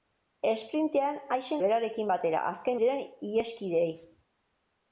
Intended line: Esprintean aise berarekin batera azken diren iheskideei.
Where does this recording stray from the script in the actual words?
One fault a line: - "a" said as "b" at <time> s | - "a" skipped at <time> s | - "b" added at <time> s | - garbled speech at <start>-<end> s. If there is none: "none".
none